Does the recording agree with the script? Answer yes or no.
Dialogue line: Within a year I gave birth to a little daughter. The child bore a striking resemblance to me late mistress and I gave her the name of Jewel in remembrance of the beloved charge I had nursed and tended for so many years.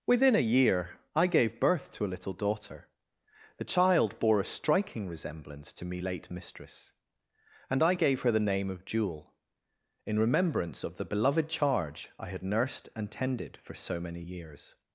yes